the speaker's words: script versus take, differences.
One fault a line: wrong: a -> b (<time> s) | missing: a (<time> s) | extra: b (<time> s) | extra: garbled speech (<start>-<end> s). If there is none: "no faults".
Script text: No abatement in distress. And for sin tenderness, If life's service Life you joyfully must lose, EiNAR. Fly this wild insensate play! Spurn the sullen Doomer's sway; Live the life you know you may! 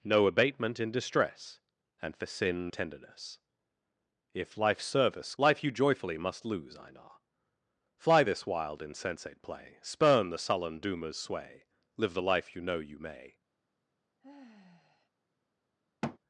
no faults